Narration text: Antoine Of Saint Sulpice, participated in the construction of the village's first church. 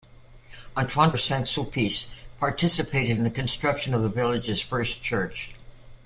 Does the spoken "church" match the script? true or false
true